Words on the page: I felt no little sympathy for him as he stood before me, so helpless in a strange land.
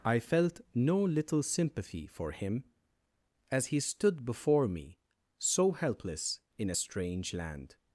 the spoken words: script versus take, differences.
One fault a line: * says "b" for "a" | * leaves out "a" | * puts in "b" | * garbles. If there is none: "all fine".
all fine